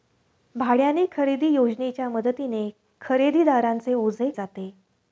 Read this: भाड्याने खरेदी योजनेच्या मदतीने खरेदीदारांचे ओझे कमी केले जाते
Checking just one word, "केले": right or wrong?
wrong